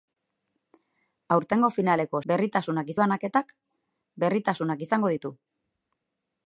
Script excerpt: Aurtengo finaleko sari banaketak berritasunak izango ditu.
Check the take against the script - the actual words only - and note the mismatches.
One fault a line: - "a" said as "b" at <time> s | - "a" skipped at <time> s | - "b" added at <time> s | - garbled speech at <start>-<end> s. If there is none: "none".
- "sari" said as "berritasunak" at 2.3 s